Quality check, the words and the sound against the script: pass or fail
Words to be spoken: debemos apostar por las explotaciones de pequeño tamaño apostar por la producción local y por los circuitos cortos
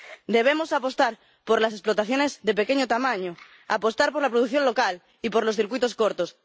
pass